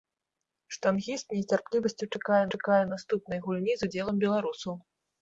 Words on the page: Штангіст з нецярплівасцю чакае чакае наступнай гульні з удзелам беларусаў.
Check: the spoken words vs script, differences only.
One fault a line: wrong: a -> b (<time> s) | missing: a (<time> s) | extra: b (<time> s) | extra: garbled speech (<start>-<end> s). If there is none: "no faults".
no faults